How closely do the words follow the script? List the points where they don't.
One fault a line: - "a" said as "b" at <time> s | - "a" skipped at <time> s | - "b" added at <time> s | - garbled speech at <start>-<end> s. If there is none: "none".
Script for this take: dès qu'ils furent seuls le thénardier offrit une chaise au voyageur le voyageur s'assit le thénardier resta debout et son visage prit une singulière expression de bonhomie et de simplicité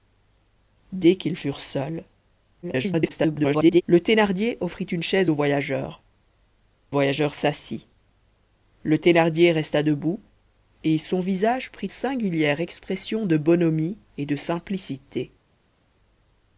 - garbled speech at 2.6-3.8 s
- "le" skipped at 6.0 s
- "une" skipped at 11.9 s